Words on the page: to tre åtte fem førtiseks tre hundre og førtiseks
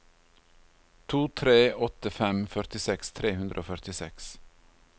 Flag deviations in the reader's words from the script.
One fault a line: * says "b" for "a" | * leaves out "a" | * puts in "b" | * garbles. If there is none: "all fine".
all fine